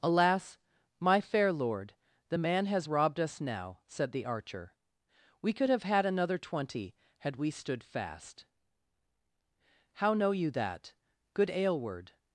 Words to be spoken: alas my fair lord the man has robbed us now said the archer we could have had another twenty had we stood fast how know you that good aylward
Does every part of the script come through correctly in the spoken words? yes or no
yes